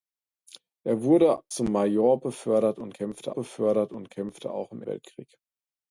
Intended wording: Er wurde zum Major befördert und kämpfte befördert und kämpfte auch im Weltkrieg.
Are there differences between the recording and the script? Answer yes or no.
no